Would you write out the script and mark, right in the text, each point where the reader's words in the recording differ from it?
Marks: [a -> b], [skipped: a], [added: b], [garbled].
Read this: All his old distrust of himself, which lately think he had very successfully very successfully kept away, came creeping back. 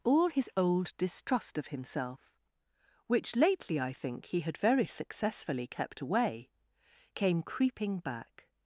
All his old distrust of himself, which lately [added: I] think he had very successfully [skipped: very successfully] kept away, came creeping back.